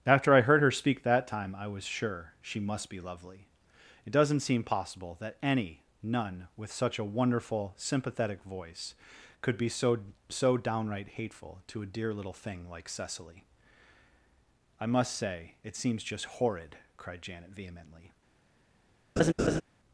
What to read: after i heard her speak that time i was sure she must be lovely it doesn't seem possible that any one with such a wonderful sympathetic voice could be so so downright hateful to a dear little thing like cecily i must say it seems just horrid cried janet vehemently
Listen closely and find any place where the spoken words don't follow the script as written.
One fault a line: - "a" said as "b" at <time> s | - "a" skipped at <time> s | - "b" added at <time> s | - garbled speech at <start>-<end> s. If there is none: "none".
- "one" said as "none" at 6.0 s